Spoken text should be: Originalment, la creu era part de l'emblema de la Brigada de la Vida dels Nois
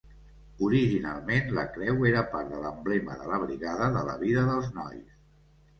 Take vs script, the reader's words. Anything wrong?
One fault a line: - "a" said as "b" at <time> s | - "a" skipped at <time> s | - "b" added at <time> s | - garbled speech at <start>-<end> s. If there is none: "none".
none